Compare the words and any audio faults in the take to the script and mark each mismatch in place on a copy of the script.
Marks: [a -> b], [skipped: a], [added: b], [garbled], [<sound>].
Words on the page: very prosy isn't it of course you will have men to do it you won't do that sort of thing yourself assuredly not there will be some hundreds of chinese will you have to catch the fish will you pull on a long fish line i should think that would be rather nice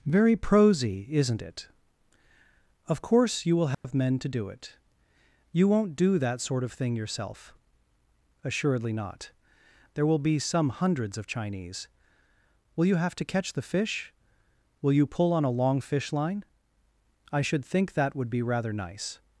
very prosy isn't it of course you will have [dropout] men to do it you won't do that sort of thing yourself assuredly not there will be some hundreds of chinese will you have to catch the fish will you pull on a long fish line i should think that would be rather nice